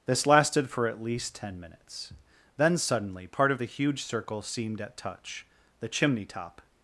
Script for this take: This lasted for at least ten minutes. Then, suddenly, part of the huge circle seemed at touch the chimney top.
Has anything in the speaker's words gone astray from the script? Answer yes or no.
no